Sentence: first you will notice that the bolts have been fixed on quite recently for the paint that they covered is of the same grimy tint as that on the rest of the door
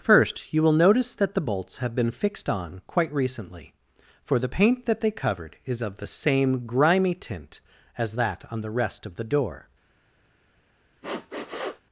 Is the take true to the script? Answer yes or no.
yes